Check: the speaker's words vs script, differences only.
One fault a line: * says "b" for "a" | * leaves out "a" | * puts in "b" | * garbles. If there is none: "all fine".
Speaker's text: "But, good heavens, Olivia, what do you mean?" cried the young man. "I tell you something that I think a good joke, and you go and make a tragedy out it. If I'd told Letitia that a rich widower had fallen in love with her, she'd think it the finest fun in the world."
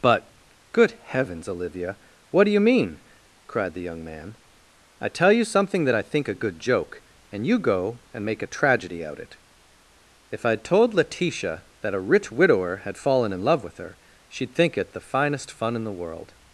all fine